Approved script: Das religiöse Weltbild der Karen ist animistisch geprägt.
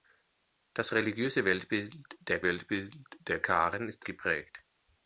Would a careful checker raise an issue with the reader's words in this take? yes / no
yes